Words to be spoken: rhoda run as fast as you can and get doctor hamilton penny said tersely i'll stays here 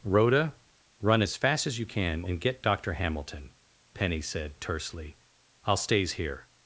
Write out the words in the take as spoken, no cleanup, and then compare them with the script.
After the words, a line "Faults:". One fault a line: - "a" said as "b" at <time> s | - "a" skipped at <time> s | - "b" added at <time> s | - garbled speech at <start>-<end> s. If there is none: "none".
rhoda run as fast as you can and get doctor hamilton penny said tersely i'll stays here
Faults:
none